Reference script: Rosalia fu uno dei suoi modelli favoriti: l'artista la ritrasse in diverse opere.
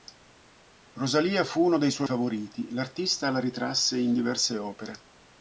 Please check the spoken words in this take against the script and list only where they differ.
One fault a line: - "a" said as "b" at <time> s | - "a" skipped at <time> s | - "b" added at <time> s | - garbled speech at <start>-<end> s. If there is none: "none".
- "modelli" skipped at 2.1 s